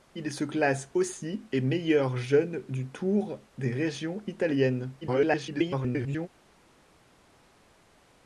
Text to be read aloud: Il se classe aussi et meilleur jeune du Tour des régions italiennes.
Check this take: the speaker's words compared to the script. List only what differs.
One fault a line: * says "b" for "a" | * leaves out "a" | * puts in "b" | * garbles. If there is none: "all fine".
* garbles